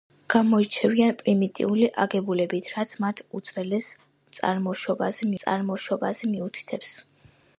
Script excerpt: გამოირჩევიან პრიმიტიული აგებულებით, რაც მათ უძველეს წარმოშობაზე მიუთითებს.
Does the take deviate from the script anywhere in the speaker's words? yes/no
yes